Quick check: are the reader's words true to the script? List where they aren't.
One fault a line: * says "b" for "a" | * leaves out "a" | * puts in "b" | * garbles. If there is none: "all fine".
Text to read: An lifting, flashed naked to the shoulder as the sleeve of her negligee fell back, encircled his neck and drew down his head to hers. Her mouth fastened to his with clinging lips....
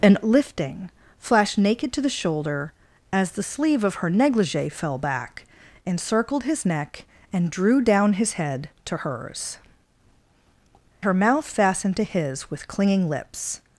all fine